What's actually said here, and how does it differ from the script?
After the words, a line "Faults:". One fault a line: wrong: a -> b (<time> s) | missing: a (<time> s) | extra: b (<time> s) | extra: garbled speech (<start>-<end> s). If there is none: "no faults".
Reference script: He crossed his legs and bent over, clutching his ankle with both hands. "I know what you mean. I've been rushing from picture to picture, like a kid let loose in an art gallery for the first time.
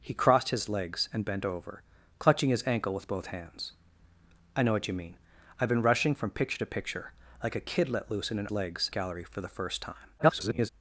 He crossed his legs and bent over, clutching his ankle with both hands. "I know what you mean. I've been rushing from picture to picture, like a kid let loose in an legs gallery for the first time. [garbled]
Faults:
wrong: art -> legs (8.5 s)
extra: garbled speech (10.2-10.7 s)